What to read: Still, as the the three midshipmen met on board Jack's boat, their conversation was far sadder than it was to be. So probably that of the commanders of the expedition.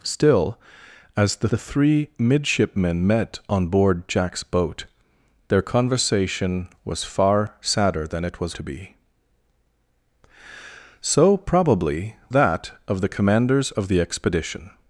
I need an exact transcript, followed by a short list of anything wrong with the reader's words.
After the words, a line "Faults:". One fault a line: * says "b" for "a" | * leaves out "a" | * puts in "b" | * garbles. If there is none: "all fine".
Still, as the the three midshipmen met on board Jack's boat, their conversation was far sadder than it was to be. So probably that of the commanders of the expedition.
Faults:
all fine